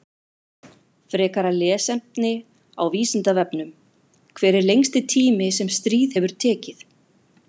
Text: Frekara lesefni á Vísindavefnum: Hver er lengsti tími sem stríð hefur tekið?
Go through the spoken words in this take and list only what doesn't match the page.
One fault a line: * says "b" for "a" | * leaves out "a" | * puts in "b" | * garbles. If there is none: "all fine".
all fine